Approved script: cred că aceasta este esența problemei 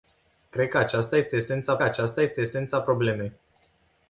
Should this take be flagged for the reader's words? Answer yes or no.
yes